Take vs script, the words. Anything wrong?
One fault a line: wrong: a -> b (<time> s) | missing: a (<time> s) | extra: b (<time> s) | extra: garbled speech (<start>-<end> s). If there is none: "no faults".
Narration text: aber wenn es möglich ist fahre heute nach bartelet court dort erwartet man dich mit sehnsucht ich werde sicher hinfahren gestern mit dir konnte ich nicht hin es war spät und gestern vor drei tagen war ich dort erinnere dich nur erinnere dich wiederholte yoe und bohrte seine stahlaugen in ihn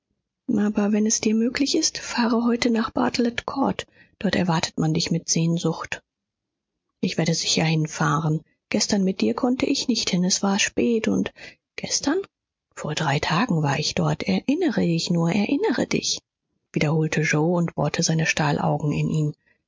extra: dir (1.2 s)